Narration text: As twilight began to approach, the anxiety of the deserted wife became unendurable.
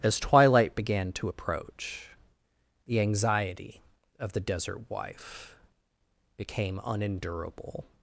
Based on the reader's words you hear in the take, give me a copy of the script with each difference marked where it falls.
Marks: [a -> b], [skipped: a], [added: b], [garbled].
As twilight began to approach, the anxiety of the [deserted -> desert] wife became unendurable.